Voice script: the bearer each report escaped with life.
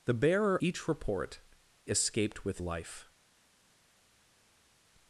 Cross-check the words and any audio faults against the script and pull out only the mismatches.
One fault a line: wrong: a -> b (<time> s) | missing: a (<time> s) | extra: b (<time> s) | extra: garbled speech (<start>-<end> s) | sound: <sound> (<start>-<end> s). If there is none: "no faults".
no faults